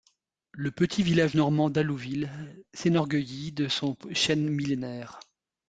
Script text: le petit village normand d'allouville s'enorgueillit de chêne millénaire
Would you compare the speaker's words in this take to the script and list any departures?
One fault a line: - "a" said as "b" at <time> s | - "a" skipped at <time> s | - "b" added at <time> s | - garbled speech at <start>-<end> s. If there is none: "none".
- "son" added at 3.7 s